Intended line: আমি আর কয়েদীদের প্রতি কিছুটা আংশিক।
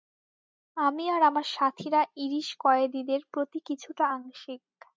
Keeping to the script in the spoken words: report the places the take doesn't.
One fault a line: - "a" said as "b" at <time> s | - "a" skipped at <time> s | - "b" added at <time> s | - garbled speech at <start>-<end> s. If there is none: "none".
- "আমার সাথীরা ইরিশ" added at 1.2 s